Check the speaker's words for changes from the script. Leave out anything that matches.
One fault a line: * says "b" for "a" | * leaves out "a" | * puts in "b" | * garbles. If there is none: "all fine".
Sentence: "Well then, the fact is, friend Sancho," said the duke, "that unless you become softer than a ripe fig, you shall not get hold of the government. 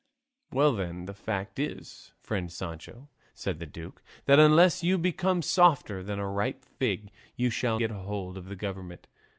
* leaves out "not"